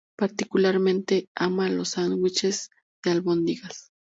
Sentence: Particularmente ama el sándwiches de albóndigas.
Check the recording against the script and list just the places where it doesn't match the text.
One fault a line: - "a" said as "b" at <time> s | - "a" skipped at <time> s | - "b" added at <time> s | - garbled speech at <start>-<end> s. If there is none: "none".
- "el" said as "los" at 1.7 s